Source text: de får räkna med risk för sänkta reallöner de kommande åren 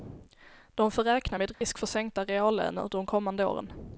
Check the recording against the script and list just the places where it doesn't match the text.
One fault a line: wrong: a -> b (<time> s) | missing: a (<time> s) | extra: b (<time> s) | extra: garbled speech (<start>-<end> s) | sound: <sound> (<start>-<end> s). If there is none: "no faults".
sound: dropout (1.5-1.6 s)